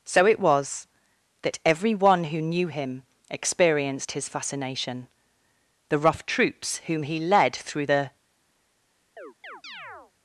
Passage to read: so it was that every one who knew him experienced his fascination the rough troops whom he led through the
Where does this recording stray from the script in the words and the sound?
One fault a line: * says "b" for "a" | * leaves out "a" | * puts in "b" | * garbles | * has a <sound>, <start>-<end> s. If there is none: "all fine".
* has a chirp, 9.2-10.1 s